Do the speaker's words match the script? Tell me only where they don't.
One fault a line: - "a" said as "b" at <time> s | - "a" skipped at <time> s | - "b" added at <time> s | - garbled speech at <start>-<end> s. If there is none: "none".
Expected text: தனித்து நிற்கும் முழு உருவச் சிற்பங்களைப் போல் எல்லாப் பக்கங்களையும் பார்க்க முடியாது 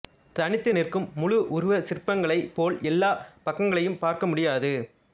none